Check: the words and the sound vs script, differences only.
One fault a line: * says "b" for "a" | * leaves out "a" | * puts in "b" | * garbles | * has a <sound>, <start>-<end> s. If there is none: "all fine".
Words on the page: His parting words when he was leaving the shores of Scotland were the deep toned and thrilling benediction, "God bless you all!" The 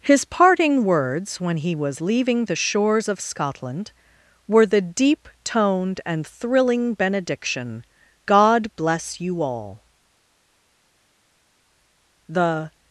all fine